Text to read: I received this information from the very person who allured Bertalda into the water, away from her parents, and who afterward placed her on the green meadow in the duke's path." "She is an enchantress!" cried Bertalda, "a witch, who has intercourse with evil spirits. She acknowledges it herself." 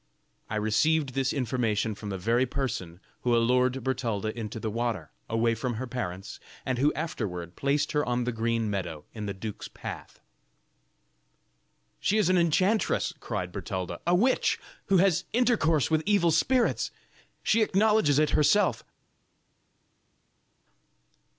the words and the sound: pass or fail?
pass